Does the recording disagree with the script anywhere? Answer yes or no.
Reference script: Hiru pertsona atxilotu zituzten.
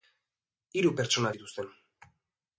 yes